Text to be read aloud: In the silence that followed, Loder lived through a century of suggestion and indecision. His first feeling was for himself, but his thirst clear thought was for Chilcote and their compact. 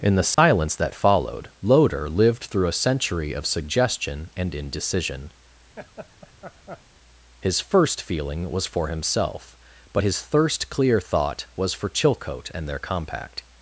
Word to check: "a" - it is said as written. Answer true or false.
true